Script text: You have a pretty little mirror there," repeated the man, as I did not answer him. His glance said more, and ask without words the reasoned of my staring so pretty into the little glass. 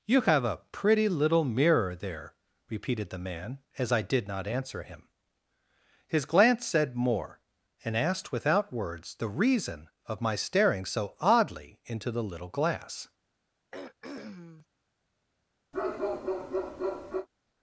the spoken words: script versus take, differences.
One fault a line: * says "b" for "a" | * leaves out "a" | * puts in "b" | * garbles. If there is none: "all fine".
* says "asked" for "ask"
* says "reason" for "reasoned"
* says "oddly" for "pretty"